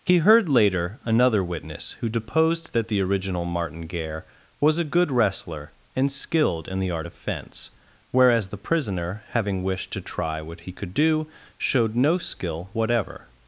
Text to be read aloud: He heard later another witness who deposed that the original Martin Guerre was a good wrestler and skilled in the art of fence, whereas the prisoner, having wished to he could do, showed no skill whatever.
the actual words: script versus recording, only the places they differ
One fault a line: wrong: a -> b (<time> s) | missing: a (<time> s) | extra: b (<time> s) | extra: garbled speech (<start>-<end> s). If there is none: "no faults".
extra: try what (10.0 s)